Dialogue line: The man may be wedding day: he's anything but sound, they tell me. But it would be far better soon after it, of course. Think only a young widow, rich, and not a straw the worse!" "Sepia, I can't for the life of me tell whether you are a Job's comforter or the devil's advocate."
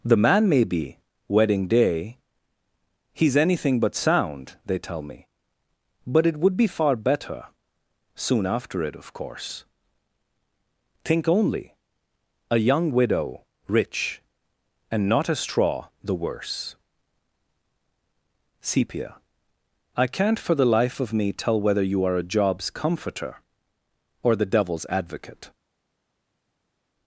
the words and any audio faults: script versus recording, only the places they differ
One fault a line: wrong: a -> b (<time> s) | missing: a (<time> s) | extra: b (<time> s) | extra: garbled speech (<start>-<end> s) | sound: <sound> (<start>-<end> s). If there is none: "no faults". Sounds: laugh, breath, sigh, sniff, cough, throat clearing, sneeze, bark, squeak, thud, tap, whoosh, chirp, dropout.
no faults